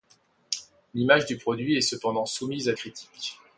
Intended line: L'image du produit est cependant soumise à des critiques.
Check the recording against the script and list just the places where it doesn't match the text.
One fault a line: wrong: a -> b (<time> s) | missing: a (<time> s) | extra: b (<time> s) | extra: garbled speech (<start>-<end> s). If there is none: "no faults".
missing: des (2.7 s)